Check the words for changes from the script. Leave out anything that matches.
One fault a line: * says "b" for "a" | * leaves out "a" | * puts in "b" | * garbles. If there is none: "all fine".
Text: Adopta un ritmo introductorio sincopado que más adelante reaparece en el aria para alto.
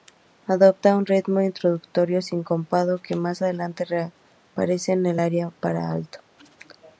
all fine